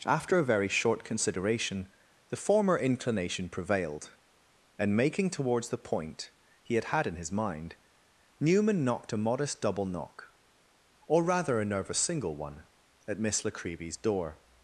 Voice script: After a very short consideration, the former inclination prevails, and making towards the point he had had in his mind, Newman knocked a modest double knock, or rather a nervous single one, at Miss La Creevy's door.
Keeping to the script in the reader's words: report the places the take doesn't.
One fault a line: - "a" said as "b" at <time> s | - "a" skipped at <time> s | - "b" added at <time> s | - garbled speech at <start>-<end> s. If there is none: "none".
- "prevails" said as "prevailed" at 3.5 s